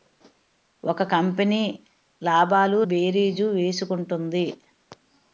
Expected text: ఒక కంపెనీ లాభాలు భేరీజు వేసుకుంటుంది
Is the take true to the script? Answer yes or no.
yes